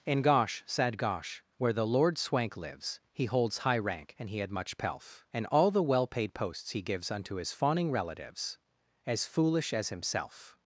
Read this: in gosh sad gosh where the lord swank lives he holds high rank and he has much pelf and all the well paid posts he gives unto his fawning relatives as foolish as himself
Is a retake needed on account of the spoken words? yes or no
yes